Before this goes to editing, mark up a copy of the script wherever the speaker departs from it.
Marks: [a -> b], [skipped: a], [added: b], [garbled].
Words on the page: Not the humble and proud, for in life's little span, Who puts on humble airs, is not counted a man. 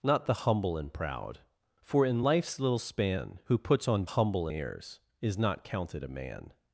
Not the humble and proud, for in life's little span, Who puts on humble airs, is not counted a man.